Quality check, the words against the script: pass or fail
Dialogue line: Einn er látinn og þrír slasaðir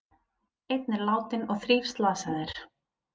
pass